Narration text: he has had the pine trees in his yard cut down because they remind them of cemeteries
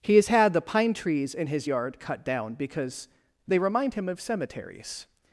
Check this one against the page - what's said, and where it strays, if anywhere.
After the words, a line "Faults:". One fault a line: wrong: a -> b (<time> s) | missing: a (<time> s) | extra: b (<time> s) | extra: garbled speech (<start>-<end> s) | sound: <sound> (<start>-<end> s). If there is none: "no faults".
he has had the pine trees in his yard cut down because they remind him of cemeteries
Faults:
wrong: them -> him (3.9 s)